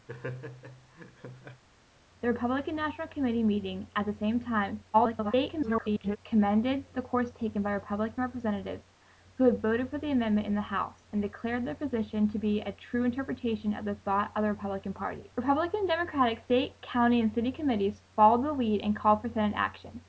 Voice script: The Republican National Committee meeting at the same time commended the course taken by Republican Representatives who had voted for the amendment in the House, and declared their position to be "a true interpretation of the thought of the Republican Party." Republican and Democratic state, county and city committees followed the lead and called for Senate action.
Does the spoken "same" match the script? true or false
true